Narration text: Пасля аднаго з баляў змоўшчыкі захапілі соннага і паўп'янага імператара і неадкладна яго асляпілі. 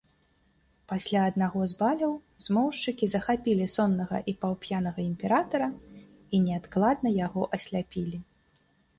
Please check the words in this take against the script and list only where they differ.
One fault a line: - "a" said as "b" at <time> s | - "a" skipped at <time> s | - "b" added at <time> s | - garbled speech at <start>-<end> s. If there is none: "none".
none